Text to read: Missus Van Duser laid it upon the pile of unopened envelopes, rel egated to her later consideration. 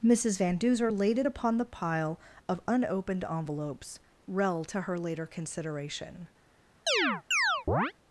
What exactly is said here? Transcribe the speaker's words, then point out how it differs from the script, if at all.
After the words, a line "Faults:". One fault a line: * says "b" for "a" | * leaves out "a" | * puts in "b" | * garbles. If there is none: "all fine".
Missus Van Duser laid it upon the pile of unopened envelopes, rel to her later consideration.
Faults:
* leaves out "egated"